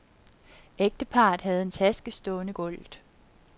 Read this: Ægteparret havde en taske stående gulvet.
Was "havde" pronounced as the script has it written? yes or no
yes